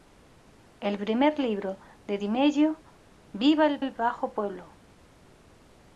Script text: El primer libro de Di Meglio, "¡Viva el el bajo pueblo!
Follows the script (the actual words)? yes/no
yes